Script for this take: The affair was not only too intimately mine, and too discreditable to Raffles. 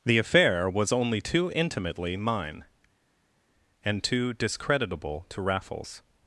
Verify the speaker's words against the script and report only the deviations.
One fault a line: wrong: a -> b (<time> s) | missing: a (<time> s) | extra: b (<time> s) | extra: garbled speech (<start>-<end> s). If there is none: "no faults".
missing: not (0.9 s)